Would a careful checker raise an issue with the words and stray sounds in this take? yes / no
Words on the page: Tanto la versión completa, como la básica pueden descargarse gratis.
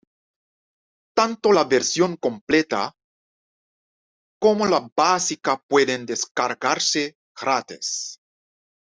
no